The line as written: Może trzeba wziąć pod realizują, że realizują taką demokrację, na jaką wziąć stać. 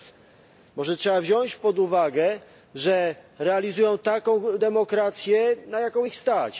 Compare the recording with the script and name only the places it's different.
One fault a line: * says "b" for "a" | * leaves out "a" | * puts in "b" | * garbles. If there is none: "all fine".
* says "uwagę" for "realizują"
* says "ich" for "wziąć"